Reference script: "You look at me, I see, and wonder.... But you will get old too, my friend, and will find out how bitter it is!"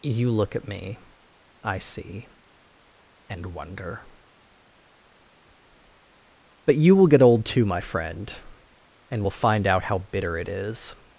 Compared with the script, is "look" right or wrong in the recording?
right